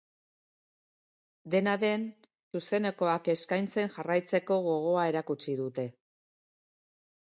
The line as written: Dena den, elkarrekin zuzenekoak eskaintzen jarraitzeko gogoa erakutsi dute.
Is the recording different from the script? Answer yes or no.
yes